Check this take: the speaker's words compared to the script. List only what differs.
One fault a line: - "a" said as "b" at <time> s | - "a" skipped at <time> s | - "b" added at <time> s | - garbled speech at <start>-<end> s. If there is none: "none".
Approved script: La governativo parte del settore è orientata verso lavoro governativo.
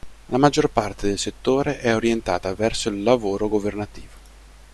- "governativo" said as "maggior" at 0.4 s
- "il" added at 2.9 s